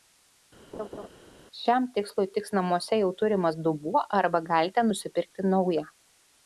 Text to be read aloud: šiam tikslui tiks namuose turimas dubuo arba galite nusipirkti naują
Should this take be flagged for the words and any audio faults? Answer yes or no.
yes